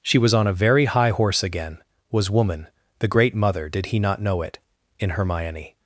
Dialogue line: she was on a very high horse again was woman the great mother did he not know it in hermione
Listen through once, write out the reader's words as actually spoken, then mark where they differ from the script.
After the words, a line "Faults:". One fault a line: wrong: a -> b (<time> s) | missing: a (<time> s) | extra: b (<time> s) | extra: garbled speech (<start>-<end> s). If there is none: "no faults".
she was on a very high horse again was woman the great mother did he not know it in hermione
Faults:
no faults